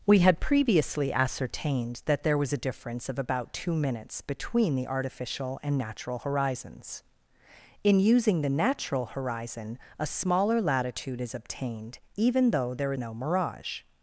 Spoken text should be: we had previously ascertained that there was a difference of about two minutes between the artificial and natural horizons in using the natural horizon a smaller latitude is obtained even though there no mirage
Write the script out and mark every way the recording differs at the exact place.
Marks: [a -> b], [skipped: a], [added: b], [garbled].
we had previously ascertained that there was a difference of about two minutes between the artificial and natural horizons in using the natural horizon a smaller latitude is obtained even though there no mirage